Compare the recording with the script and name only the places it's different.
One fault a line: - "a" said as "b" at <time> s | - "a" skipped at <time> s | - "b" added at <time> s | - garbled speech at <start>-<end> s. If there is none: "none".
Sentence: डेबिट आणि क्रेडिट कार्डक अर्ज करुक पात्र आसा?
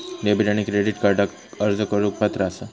none